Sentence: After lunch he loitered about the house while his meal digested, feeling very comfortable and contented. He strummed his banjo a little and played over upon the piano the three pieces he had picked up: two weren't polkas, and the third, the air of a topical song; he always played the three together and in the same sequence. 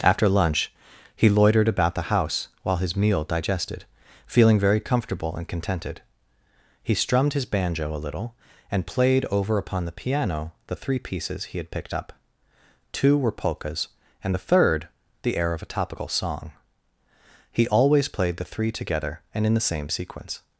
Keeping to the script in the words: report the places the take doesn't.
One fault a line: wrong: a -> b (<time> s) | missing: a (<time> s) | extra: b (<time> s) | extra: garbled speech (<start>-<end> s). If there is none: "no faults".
wrong: weren't -> were (13.2 s)